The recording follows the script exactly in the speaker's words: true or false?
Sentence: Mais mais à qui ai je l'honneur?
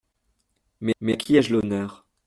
true